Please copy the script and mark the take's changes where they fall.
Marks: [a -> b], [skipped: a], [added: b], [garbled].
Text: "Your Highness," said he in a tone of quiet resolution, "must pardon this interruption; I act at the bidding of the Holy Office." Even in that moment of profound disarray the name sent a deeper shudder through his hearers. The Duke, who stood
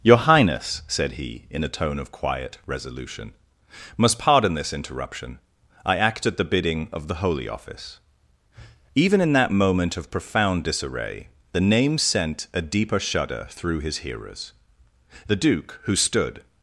"Your Highness," said he in a tone of quiet resolution, "must pardon this interruption; I act at the bidding of the Holy Office." Even in that moment of profound disarray the name sent a deeper shudder through his hearers. The Duke, who stood